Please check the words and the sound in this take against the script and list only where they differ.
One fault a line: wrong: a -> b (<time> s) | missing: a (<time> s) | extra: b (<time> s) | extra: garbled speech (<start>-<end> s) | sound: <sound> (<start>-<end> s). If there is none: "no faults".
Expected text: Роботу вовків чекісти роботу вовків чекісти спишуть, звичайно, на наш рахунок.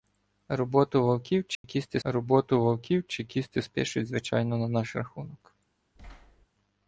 sound: dropout (1.5-1.6 s)
sound: thud (6.0-6.5 s)